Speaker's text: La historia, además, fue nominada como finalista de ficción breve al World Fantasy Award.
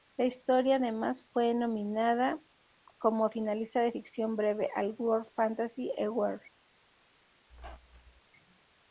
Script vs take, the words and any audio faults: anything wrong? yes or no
yes